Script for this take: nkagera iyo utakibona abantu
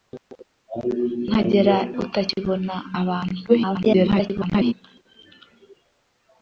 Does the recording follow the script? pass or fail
fail